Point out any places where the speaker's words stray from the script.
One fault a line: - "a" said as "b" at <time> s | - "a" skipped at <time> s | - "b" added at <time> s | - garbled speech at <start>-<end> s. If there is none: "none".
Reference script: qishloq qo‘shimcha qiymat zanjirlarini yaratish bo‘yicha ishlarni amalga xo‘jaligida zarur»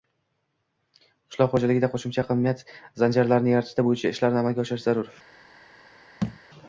- "xo‘jaligida" added at 1.5 s
- "xo‘jaligida" said as "oshirish" at 4.7 s